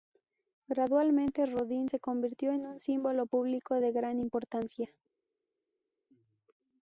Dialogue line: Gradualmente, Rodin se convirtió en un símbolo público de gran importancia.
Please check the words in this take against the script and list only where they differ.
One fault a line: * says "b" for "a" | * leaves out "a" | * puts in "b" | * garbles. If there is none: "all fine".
all fine